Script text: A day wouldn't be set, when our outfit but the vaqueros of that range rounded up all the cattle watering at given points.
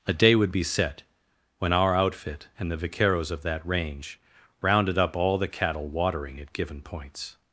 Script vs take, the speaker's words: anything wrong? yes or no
yes